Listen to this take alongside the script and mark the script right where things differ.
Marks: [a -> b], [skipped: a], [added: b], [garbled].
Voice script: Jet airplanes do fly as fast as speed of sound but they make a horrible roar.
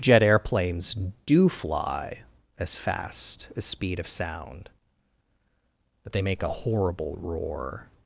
Jet airplanes do fly as fast as speed of sound but they make a horrible roar.